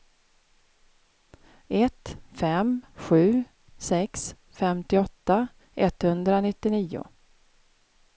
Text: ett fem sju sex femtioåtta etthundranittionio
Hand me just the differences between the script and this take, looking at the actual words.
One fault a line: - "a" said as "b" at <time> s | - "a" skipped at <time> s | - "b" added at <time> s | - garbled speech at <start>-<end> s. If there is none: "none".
none